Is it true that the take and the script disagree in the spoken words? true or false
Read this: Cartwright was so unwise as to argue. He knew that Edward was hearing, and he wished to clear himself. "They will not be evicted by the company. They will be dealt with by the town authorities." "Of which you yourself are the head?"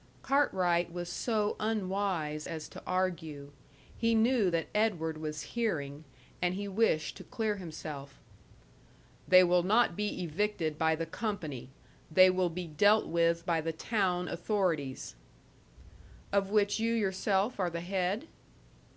false